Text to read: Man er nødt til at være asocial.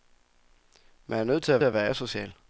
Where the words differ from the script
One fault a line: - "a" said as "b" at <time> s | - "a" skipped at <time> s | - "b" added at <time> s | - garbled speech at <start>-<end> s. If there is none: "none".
- "at" added at 1.6 s